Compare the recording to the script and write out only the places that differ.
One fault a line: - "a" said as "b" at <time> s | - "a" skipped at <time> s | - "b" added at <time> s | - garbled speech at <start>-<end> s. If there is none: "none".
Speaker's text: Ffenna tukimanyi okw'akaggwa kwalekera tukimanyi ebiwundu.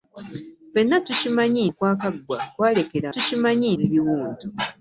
none